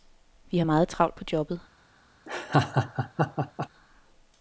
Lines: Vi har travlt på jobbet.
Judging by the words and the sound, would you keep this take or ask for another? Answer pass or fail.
fail